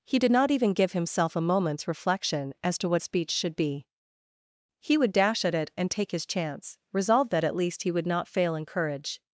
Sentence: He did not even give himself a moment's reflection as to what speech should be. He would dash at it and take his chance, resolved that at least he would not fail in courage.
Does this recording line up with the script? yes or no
yes